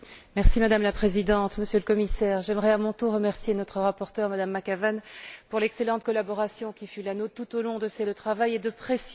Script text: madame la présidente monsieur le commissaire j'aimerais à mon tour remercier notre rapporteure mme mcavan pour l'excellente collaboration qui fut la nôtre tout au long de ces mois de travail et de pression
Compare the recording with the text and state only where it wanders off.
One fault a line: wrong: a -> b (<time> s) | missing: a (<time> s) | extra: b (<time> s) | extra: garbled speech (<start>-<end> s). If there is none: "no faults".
missing: mois (8.1 s)